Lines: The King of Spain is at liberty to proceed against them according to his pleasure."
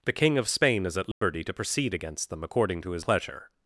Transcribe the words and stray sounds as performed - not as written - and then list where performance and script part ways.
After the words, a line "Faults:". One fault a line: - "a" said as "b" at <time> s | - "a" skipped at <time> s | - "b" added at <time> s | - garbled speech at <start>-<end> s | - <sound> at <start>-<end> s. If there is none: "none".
The King of Spain is at liberty to proceed against them according to his pleasure."
Faults:
- dropout at 1.1-1.2 s